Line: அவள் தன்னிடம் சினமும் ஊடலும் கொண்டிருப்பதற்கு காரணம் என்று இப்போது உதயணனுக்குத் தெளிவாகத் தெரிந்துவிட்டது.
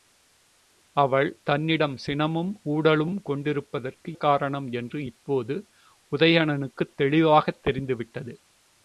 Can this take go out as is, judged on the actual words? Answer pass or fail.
pass